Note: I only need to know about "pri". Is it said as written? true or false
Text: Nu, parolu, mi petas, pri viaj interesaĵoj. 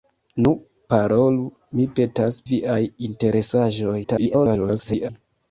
false